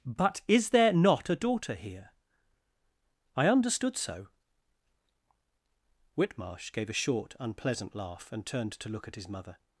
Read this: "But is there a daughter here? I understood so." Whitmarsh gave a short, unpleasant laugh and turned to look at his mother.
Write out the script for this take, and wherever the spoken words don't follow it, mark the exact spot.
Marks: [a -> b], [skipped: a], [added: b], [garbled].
"But is there [added: not] a daughter here? I understood so." Whitmarsh gave a short, unpleasant laugh and turned to look at his mother.